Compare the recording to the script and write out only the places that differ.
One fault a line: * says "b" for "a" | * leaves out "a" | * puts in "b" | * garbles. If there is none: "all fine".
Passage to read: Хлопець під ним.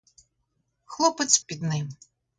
all fine